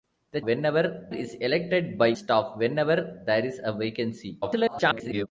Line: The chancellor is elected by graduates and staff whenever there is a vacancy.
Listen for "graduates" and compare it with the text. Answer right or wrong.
wrong